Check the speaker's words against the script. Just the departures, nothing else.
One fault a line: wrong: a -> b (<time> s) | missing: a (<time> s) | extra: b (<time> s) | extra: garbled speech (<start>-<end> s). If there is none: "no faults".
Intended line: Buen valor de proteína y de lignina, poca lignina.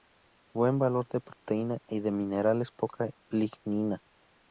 wrong: lignina -> minerales (2.1 s)